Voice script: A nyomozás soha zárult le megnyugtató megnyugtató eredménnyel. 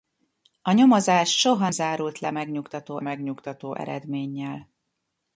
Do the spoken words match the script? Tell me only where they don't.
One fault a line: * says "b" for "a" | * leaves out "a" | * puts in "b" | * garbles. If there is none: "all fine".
all fine